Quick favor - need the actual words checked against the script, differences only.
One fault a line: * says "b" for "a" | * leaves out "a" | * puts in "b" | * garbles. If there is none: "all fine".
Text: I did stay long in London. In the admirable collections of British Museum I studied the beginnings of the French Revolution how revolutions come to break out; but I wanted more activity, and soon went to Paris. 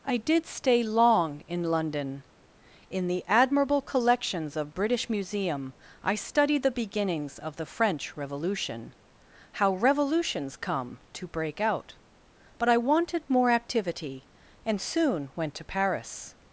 all fine